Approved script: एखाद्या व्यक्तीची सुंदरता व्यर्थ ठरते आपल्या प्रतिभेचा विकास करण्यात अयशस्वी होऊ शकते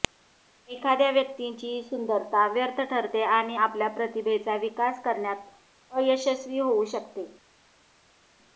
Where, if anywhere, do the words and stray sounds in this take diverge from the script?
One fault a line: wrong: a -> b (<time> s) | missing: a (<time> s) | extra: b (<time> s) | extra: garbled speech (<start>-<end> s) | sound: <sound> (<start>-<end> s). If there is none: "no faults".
extra: आणि (3.2 s)